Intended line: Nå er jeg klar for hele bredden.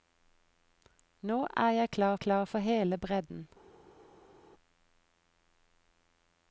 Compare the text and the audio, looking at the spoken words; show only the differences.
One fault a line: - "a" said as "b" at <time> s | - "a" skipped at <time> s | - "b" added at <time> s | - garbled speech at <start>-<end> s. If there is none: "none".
- "klar" added at 2.2 s